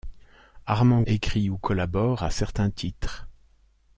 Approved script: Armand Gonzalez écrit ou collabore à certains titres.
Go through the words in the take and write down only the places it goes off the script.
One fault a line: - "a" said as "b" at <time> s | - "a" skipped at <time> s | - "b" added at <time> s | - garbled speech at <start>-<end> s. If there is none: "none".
- "Gonzalez" skipped at 1.0 s